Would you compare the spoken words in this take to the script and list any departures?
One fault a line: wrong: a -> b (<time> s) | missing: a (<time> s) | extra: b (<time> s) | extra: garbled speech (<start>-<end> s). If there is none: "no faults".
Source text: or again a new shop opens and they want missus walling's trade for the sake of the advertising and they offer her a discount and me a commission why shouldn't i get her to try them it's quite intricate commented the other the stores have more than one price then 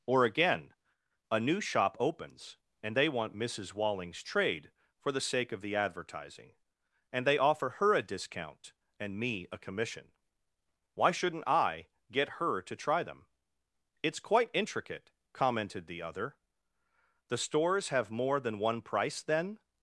no faults